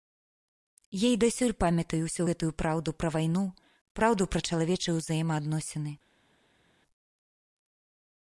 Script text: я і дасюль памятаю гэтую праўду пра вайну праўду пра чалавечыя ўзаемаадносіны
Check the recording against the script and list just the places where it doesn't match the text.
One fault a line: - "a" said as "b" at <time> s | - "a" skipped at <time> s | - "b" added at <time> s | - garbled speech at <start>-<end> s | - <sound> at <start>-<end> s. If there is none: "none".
- "ўсю" added at 2.0 s